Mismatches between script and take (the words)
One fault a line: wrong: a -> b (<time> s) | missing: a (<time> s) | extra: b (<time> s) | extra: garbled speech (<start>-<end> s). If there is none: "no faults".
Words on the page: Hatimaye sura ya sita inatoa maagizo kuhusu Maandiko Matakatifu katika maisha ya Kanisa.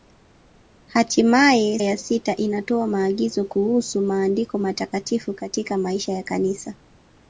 missing: sura (1.8 s)